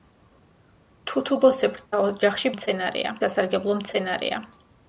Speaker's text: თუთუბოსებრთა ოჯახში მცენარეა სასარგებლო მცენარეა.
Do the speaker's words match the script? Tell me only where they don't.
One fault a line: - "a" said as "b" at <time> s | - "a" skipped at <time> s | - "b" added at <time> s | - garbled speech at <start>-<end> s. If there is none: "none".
none